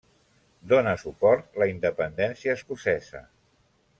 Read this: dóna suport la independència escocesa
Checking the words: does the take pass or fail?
pass